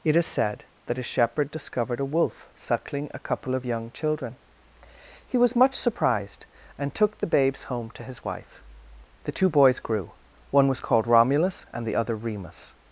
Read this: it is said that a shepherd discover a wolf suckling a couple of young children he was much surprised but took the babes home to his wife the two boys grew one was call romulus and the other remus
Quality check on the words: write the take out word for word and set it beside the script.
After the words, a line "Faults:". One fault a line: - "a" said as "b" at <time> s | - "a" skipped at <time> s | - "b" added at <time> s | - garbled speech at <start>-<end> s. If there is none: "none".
it is said that a shepherd discovered a wolf suckling a couple of young children he was much surprised and took the babes home to his wife the two boys grew one was called romulus and the other remus
Faults:
- "discover" said as "discovered" at 1.5 s
- "but" said as "and" at 6.8 s
- "call" said as "called" at 10.8 s